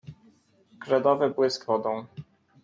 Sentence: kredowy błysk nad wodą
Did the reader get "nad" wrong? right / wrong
wrong